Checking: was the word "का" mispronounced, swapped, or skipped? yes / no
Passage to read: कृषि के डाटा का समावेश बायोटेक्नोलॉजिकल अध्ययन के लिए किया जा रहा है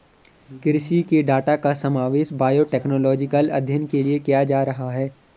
no